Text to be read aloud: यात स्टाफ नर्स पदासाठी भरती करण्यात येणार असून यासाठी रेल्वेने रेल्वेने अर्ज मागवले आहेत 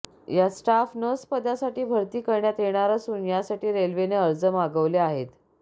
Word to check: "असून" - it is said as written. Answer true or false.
true